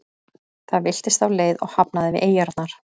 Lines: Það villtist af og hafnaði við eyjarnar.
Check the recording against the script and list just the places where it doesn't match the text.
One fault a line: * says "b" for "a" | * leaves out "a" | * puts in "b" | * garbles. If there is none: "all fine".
* puts in "leið"